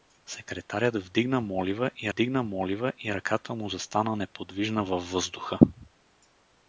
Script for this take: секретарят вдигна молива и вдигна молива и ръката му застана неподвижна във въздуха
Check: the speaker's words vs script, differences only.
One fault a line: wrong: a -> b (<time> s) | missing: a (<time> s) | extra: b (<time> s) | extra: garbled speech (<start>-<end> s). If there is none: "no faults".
no faults